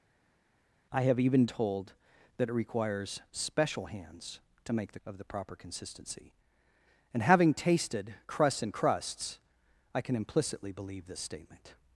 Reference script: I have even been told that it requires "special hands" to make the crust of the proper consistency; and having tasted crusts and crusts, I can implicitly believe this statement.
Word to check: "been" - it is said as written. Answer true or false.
false